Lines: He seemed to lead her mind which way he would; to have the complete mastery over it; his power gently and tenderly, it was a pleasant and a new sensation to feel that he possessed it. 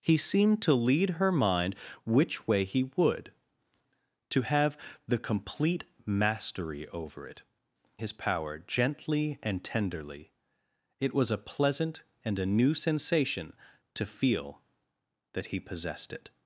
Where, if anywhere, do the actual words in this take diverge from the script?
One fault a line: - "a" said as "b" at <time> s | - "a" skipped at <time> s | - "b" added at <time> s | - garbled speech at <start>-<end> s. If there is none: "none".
none